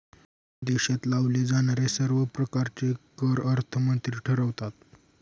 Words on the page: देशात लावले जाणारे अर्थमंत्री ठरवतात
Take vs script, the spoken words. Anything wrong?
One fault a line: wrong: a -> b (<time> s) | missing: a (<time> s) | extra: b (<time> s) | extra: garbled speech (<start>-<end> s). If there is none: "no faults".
extra: सर्व प्रकारचे कर (1.9 s)